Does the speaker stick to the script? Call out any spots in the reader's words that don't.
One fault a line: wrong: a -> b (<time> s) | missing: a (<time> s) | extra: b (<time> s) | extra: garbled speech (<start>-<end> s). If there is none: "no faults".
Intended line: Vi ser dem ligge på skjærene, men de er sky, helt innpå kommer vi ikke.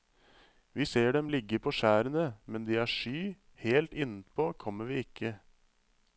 no faults